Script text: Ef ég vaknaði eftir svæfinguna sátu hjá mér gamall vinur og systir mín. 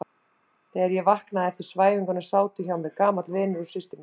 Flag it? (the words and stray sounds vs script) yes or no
yes